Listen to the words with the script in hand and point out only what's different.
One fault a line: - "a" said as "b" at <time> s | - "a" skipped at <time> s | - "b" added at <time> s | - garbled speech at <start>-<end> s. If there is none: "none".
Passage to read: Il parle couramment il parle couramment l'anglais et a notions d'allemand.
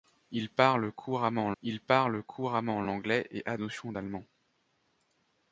none